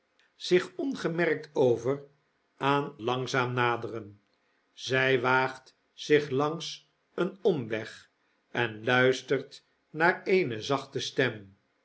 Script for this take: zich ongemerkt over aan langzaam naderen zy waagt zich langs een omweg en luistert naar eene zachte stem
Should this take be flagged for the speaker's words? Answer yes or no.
no